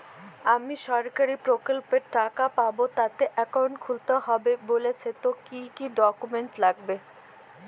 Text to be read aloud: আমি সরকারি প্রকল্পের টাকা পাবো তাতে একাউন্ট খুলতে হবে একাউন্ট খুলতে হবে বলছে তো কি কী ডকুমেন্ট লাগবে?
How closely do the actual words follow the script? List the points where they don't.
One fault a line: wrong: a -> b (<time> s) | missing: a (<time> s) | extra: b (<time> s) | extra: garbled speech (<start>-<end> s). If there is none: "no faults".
missing: একাউন্ট খুলতে হবে (4.5 s)